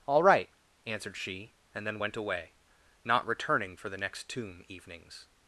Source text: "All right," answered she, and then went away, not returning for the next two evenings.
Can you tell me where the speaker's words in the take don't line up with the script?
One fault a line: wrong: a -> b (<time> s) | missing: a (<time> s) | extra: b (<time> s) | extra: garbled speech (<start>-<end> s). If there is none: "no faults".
wrong: two -> tomb (4.3 s)